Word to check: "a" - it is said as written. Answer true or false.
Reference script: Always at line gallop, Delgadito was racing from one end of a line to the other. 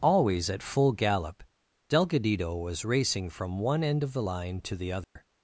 false